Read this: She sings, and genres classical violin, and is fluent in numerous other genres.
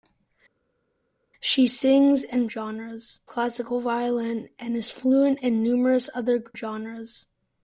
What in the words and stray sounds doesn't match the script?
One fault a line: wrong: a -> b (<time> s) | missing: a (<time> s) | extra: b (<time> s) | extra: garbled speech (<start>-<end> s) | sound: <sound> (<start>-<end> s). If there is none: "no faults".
no faults